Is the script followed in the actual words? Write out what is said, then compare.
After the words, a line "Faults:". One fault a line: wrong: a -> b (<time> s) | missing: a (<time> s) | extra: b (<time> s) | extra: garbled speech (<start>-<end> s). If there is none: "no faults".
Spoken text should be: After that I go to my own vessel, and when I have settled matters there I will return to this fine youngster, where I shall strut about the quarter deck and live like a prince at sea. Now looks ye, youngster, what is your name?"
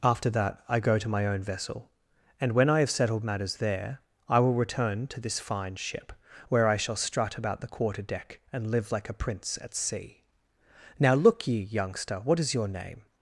After that I go to my own vessel, and when I have settled matters there I will return to this fine ship, where I shall strut about the quarter deck and live like a prince at sea. Now look ye, youngster, what is your name?"
Faults:
wrong: youngster -> ship (5.8 s)
wrong: looks -> look (11.1 s)